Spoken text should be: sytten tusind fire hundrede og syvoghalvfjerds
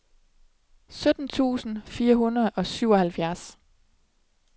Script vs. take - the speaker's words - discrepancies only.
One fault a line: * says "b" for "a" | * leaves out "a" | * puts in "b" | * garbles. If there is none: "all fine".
all fine